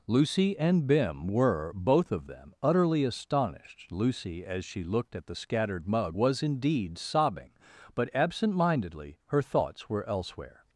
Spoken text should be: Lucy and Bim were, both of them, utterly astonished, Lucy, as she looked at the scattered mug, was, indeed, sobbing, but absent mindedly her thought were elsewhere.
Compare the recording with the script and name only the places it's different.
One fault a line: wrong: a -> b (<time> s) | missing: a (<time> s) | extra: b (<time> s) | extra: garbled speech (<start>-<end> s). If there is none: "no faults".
wrong: thought -> thoughts (9.4 s)